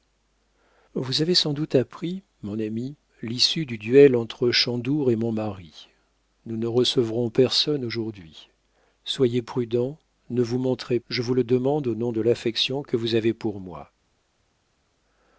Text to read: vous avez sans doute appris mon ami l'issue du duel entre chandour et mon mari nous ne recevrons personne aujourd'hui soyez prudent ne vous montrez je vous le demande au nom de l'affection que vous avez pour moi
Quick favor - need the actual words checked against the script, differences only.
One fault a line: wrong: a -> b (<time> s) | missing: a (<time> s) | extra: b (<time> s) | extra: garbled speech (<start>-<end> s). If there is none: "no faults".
no faults